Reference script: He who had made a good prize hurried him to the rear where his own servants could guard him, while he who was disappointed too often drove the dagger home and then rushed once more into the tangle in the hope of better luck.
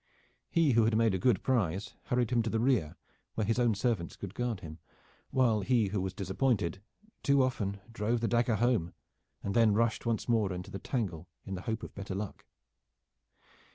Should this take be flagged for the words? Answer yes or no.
no